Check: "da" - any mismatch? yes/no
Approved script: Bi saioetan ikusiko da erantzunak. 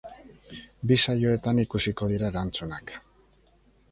yes